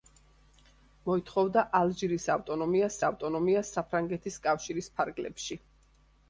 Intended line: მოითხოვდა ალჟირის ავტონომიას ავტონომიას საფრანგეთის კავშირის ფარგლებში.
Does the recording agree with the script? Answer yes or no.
yes